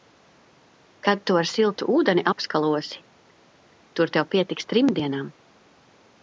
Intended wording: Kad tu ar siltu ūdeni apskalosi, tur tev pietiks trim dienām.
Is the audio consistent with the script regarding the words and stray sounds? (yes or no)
yes